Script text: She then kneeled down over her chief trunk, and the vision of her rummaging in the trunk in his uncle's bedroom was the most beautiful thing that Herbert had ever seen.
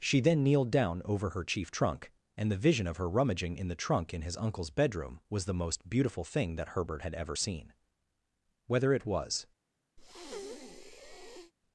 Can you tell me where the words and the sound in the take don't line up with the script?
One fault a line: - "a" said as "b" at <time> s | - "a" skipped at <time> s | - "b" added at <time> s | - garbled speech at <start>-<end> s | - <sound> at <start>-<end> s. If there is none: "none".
- "Whether it was" added at 8.7 s
- breath at 10.0-11.5 s